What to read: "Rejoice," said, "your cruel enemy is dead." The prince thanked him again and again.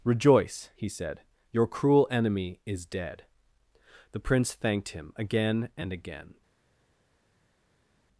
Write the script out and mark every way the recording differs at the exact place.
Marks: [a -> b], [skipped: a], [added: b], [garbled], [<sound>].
"Rejoice," [added: he] said, "your cruel enemy is dead." The prince thanked him again and again.